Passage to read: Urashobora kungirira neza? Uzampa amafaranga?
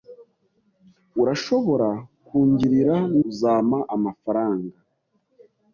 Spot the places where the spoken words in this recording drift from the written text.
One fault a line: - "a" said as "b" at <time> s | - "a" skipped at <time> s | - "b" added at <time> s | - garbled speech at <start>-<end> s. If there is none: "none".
- "neza" skipped at 3.0 s